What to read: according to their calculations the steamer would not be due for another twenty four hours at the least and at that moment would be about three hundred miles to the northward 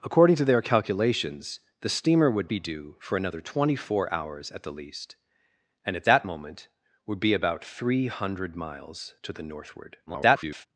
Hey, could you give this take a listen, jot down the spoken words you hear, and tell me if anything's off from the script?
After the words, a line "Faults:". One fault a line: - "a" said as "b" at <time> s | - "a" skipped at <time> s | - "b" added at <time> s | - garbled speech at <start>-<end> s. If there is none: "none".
according to their calculations the steamer would be due for another twenty four hours at the least and at that moment would be about three hundred miles to the northward [garbled]
Faults:
- "not" skipped at 2.5 s
- garbled speech at 10.1-10.7 s